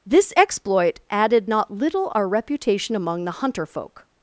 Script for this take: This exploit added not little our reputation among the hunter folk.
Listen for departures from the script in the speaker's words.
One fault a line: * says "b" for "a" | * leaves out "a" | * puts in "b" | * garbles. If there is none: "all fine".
all fine